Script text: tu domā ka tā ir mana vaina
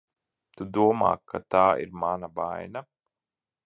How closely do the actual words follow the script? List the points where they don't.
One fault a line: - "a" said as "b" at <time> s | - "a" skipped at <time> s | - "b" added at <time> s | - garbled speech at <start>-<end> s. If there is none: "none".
none